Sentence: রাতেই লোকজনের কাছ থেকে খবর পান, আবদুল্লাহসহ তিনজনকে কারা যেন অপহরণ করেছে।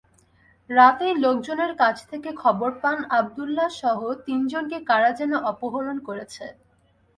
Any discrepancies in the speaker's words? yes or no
no